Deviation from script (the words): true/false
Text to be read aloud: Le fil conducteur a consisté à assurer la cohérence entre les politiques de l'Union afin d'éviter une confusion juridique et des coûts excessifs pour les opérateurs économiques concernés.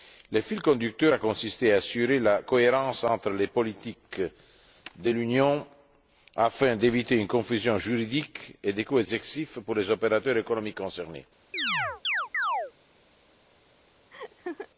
false